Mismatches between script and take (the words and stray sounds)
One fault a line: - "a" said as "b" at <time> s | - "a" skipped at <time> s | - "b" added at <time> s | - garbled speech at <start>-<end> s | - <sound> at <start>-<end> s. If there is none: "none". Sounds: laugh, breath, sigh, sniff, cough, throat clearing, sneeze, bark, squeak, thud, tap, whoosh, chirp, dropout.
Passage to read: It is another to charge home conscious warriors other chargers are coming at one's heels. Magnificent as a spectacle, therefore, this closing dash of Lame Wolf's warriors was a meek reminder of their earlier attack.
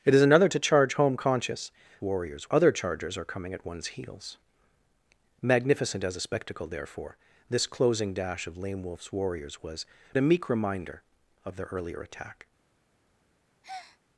- breath at 13.6-14.0 s